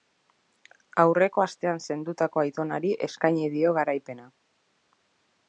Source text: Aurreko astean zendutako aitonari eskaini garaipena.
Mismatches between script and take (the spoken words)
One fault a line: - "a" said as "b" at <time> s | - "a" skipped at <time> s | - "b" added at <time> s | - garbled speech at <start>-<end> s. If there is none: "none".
- "dio" added at 3.6 s